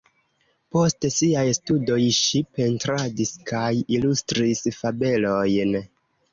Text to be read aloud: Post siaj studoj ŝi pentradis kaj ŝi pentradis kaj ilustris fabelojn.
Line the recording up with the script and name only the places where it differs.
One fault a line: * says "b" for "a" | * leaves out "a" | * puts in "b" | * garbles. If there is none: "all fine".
* leaves out "ŝi pentradis kaj"